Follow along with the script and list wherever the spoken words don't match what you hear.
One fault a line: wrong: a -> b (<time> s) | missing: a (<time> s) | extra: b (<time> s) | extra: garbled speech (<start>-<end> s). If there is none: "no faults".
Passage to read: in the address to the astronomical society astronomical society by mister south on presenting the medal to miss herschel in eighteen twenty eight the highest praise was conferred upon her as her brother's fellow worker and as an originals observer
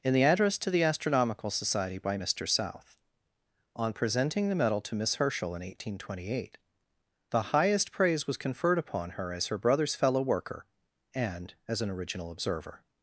missing: astronomical society (2.0 s)
wrong: originals -> original (11.9 s)